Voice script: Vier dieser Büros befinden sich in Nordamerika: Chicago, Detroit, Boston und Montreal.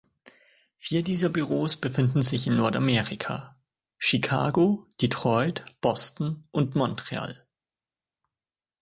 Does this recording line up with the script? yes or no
yes